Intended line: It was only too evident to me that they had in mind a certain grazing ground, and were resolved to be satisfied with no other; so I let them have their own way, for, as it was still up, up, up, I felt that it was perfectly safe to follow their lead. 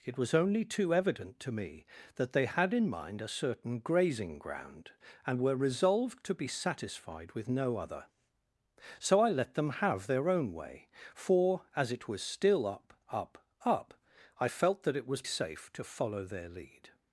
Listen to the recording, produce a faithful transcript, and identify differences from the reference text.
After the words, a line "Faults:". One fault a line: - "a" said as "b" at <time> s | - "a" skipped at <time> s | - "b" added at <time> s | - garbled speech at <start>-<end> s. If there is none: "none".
It was only too evident to me that they had in mind a certain grazing ground, and were resolved to be satisfied with no other; so I let them have their own way, for, as it was still up, up, up, I felt that it was safe to follow their lead.
Faults:
- "perfectly" skipped at 15.2 s